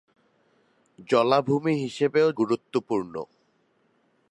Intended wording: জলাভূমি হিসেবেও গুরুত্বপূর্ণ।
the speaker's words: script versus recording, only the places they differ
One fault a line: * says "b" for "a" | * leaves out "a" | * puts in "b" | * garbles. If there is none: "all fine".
all fine